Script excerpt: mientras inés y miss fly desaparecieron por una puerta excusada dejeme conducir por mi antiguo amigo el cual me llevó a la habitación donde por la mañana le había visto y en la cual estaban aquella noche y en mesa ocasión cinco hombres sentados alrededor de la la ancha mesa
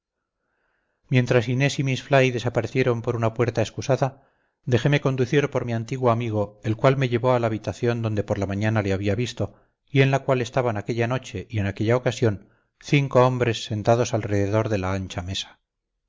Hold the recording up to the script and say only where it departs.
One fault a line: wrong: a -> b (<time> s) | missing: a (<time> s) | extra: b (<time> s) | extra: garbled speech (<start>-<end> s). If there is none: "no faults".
wrong: mesa -> aquella (11.7 s)
missing: la (14.9 s)